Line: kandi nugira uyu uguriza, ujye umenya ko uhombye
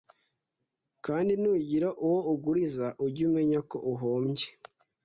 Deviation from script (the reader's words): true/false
true